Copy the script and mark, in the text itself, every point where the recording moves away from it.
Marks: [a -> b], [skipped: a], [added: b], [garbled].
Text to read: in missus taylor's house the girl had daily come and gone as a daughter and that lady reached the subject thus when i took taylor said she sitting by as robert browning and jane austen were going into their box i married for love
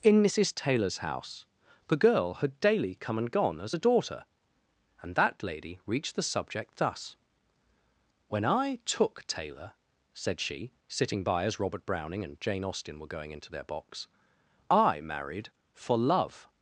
in missus taylor's house the girl had daily come and gone as a daughter and that lady reached the subject thus when i took taylor said she sitting by as robert browning and jane austen were going into their box i married for love